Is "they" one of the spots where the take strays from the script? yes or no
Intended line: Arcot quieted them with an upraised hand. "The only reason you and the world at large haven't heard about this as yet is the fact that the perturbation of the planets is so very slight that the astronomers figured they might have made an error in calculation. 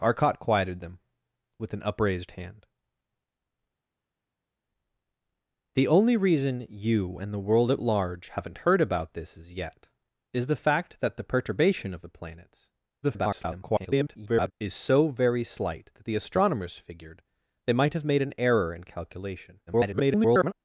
no